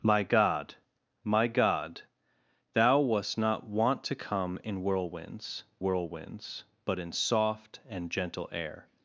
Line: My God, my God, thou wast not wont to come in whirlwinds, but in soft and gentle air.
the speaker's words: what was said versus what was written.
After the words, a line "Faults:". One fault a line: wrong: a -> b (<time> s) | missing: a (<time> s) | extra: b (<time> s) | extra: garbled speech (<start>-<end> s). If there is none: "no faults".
My God, my God, thou wast not wont to come in whirlwinds whirlwinds, but in soft and gentle air.
Faults:
extra: whirlwinds (5.8 s)